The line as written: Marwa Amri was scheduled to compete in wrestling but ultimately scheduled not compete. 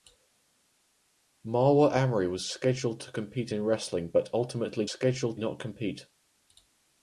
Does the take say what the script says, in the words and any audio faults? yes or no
yes